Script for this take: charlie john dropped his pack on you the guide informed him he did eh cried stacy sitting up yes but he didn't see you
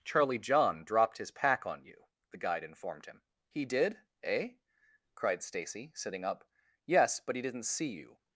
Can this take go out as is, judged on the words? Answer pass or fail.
pass